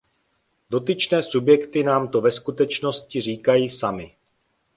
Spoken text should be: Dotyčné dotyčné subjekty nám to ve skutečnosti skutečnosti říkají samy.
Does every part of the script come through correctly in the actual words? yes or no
no